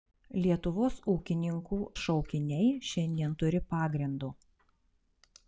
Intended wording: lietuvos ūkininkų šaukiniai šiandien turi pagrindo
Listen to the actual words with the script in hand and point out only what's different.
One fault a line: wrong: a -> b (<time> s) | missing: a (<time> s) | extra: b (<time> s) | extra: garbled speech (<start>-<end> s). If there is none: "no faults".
no faults